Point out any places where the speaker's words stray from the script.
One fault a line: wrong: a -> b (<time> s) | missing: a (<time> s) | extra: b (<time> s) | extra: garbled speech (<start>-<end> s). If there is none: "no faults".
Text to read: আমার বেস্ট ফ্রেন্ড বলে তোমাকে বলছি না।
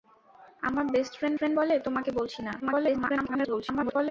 extra: ফ্রেন্ড (1.4 s)
extra: garbled speech (2.6-4.1 s)